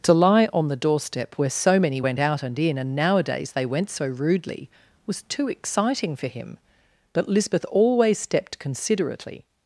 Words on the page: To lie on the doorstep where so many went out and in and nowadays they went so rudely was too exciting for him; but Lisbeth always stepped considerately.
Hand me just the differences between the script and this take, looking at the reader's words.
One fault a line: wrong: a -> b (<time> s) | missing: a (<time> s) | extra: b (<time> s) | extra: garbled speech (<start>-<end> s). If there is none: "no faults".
no faults